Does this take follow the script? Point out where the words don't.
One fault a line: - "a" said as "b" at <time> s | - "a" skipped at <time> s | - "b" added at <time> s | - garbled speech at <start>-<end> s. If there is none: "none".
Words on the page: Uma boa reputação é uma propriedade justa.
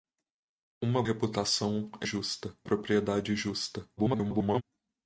- "boa" skipped at 1.0 s
- "uma" said as "justa" at 2.0 s
- garbled speech at 4.0-4.6 s